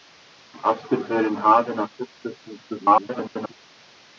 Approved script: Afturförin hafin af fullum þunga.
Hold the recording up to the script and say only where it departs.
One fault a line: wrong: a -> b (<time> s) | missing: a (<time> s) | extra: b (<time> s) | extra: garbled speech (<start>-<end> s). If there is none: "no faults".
extra: garbled speech (2.7-3.5 s)